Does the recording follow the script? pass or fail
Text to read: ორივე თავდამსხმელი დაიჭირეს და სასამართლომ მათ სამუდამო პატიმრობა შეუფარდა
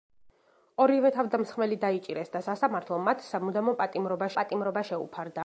fail